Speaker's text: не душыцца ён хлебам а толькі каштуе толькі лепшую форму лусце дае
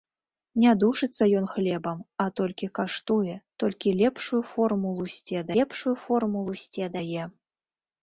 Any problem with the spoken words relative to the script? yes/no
yes